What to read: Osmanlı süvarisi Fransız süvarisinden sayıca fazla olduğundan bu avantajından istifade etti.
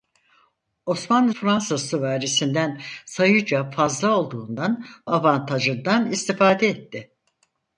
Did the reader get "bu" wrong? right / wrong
wrong